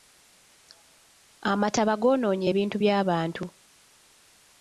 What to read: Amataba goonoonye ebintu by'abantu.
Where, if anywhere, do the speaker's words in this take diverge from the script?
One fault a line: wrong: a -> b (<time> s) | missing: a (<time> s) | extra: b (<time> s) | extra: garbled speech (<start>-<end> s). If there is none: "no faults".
no faults